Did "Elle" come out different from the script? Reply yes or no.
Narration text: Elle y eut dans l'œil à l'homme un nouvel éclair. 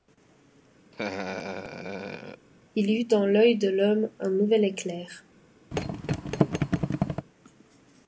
yes